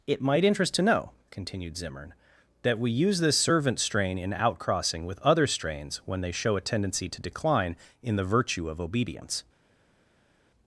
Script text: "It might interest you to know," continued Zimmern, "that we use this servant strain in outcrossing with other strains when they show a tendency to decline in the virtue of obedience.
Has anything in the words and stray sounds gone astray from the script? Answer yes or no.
yes